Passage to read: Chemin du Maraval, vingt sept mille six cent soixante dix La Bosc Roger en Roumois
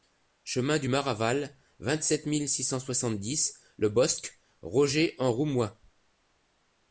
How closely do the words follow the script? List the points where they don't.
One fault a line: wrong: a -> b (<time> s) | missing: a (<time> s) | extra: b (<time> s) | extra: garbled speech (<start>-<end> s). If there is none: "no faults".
wrong: La -> Le (3.8 s)